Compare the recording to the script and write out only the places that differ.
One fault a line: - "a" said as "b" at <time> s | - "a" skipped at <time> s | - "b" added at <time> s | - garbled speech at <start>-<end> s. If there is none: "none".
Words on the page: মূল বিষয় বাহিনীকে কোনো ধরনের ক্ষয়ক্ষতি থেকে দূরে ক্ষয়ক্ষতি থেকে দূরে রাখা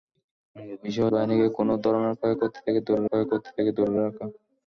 none